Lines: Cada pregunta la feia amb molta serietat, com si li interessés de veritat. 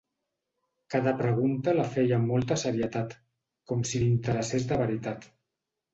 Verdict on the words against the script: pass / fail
pass